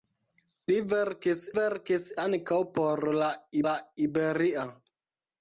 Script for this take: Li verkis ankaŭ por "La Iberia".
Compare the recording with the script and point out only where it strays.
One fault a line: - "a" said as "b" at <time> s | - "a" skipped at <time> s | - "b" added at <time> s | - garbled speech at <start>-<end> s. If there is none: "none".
- "verkis" added at 1.6 s
- "la" added at 3.7 s